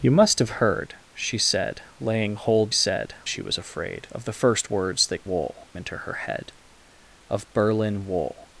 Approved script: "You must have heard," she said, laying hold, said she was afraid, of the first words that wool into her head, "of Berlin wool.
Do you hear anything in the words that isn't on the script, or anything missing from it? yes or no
no